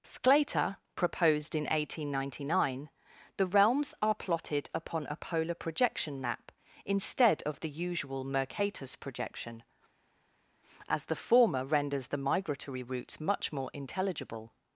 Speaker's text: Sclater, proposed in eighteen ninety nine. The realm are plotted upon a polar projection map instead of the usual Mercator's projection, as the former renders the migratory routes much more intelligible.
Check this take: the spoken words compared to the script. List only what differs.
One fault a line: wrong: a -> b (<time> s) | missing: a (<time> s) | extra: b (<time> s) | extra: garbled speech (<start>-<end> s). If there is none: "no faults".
wrong: realm -> realms (3.5 s)